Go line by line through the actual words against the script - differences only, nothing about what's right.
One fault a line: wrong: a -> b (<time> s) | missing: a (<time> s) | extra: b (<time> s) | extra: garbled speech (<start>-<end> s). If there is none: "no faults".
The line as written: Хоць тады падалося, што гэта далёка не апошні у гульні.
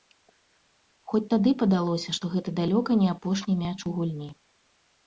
extra: мяч (3.6 s)